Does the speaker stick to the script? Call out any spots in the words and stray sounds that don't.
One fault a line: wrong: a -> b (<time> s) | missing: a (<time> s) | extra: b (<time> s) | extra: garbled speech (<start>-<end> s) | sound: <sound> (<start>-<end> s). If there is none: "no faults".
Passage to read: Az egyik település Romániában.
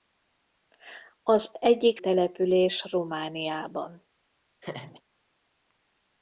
sound: laugh (4.6-5.0 s)